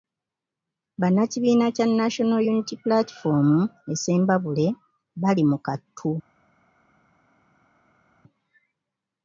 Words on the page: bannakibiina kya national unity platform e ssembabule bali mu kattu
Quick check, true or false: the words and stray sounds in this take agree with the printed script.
true